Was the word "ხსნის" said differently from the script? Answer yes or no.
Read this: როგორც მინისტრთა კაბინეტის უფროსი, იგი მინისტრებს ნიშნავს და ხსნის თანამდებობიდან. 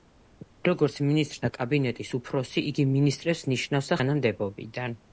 yes